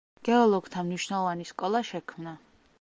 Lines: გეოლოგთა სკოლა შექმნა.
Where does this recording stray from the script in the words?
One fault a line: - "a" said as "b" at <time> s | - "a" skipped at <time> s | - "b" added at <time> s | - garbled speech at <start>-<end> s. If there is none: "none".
- "მნიშვნელოვანი" added at 0.9 s